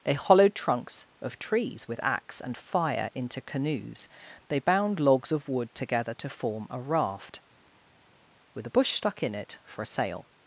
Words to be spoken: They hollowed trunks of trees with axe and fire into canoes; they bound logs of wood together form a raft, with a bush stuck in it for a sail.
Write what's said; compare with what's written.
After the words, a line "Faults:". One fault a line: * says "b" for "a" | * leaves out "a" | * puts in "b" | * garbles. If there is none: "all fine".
They hollowed trunks of trees with axe and fire into canoes; they bound logs of wood together to form a raft, with a bush stuck in it for a sail.
Faults:
* puts in "to"